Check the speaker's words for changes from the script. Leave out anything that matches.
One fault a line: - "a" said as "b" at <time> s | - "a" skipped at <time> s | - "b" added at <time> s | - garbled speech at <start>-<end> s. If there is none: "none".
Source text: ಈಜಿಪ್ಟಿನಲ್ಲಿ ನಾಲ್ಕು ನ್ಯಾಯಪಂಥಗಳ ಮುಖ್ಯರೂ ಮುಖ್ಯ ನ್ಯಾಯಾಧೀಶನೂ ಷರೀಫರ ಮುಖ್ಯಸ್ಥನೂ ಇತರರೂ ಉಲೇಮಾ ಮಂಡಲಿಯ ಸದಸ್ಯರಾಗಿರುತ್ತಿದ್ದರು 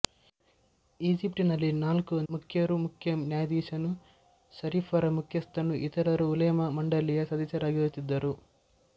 - "ನ್ಯಾಯಪಂಥಗಳ" skipped at 2.1 s